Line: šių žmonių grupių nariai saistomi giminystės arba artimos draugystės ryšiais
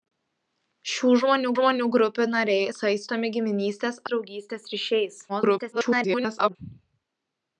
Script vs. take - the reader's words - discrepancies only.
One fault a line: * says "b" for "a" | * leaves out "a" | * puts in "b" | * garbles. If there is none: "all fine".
* puts in "žmonių"
* leaves out "arba artimos"
* garbles